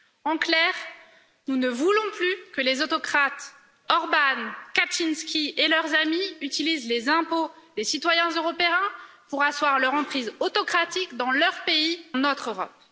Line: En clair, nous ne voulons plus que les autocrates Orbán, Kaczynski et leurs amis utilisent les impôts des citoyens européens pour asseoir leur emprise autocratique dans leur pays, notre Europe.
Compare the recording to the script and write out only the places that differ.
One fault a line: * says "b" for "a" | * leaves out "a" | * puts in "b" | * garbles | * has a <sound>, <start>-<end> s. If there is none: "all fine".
all fine